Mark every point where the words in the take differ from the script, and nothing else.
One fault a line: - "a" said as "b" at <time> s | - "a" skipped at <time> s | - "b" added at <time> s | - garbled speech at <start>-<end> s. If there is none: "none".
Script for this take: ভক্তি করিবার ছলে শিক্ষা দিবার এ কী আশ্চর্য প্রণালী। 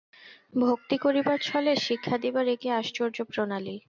none